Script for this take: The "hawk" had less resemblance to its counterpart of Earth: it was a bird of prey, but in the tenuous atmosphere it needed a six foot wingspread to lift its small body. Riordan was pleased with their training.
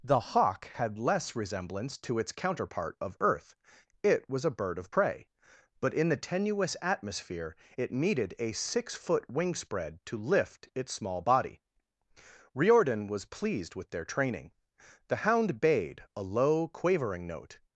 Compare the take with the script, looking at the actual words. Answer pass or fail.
fail